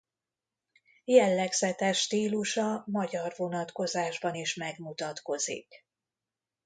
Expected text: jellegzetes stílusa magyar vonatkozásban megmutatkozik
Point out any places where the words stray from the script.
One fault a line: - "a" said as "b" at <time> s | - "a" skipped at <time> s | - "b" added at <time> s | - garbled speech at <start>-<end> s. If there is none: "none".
- "is" added at 4.3 s